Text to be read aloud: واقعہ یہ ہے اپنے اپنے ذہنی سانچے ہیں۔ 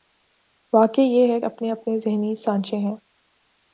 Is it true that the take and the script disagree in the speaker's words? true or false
false